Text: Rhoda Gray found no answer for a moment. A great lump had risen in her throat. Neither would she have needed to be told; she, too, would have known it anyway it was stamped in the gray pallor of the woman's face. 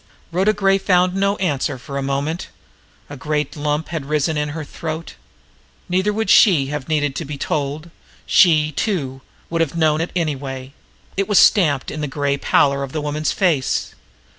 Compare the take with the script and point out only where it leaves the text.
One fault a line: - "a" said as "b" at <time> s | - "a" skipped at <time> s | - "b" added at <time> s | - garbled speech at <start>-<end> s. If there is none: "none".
none